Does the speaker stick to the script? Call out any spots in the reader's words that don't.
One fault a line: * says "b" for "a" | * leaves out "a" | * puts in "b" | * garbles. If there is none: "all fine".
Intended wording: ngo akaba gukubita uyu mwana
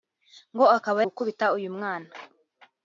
all fine